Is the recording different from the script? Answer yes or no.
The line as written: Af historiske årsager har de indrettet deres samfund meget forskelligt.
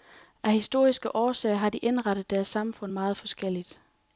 no